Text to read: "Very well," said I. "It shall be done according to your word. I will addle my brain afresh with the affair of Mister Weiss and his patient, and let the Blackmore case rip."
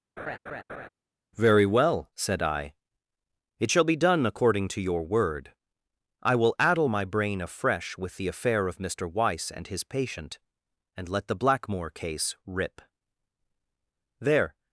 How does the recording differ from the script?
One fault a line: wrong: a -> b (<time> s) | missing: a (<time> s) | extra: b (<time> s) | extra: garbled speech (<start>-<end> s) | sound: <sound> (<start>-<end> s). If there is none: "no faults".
sound: laugh (0.2-0.9 s)
extra: There (14.2 s)